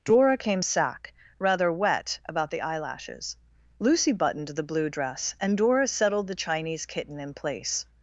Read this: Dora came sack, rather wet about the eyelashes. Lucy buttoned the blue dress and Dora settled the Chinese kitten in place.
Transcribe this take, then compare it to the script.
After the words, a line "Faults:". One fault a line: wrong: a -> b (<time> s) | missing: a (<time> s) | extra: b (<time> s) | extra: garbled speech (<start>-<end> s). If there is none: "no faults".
Dora came sack, rather wet about the eyelashes. Lucy buttoned the blue dress and Dora settled the Chinese kitten in place.
Faults:
no faults